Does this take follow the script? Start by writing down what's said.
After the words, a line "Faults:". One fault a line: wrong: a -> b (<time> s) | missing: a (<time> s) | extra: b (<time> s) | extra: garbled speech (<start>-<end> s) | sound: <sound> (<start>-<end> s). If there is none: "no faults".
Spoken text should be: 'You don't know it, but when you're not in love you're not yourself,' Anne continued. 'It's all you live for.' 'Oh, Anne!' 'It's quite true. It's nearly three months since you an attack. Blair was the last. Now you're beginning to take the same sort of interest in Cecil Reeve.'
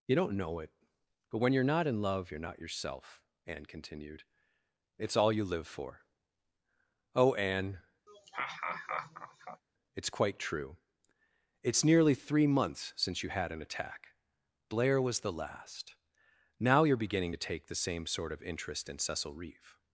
'You don't know it, but when you're not in love you're not yourself,' Anne continued. 'It's all you live for.' 'Oh, Anne!' 'It's quite true. It's nearly three months since you had an attack. Blair was the last. Now you're beginning to take the same sort of interest in Cecil Reeve.'
Faults:
sound: laugh (8.1-9.6 s)
extra: had (13.3 s)